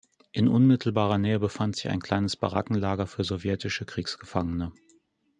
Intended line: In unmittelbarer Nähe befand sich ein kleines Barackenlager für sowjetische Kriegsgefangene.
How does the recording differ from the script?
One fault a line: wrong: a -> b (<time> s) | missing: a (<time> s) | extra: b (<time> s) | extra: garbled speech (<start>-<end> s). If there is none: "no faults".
no faults